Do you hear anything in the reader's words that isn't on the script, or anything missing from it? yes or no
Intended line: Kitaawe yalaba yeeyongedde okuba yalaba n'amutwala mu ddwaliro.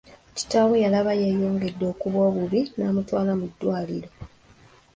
yes